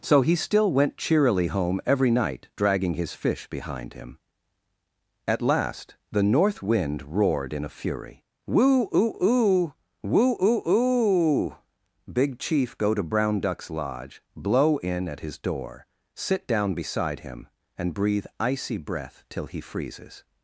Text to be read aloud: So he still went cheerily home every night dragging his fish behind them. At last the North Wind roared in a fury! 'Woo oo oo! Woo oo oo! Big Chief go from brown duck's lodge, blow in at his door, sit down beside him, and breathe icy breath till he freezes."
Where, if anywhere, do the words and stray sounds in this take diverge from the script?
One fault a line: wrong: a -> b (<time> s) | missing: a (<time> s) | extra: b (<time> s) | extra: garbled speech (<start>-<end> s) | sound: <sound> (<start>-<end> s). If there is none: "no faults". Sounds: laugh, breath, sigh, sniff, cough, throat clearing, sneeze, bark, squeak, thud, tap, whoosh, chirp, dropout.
wrong: them -> him (3.9 s)
wrong: from -> to (12.9 s)